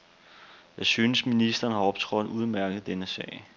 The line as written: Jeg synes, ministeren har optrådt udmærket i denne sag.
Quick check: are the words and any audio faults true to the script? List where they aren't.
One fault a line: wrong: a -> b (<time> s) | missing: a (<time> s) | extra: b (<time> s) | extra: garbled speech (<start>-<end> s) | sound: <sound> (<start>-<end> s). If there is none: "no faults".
no faults